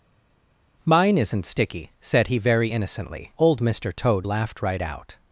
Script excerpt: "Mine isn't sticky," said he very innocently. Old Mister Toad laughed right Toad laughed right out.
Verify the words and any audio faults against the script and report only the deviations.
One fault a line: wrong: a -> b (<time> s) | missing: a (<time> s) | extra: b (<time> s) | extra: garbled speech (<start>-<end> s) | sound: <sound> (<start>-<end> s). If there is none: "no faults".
missing: Toad laughed right (4.8 s)